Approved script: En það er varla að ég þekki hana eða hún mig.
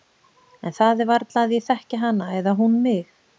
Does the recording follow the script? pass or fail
pass